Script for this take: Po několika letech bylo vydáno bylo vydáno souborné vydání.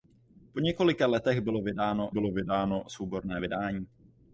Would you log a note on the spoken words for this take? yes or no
no